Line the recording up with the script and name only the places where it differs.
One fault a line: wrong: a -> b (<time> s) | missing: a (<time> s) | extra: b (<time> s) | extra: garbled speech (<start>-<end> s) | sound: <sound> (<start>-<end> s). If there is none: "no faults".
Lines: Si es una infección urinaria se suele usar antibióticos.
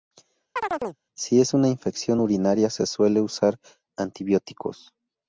sound: chirp (0.6-1.0 s)